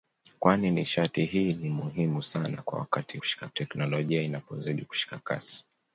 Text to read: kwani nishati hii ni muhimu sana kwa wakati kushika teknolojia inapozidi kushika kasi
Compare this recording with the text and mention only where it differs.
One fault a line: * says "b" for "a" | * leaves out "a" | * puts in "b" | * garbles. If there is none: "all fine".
all fine